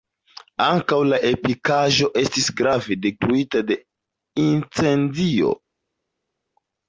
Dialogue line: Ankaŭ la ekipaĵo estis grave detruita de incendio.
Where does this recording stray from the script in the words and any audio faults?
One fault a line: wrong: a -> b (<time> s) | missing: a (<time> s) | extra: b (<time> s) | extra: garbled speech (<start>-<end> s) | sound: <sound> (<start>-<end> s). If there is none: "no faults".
no faults